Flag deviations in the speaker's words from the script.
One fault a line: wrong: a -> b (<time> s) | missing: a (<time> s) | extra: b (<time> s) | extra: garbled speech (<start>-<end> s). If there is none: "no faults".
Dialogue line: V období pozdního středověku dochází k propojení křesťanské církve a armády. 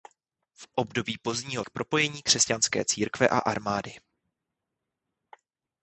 missing: středověku dochází (1.6 s)